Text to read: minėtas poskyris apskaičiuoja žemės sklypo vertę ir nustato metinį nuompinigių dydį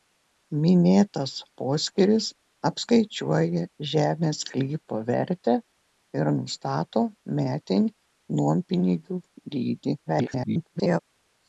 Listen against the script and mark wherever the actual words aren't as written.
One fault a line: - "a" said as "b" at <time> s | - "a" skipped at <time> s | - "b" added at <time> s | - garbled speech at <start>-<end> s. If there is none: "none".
- garbled speech at 10.1-11.0 s